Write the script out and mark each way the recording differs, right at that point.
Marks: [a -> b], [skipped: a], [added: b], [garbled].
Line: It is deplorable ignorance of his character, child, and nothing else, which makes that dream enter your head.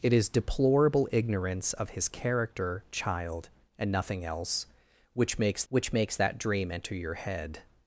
It is deplorable ignorance of his character, child, and nothing else, which makes [added: which makes] that dream enter your head.